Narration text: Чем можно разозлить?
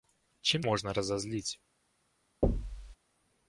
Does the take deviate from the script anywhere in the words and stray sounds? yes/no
yes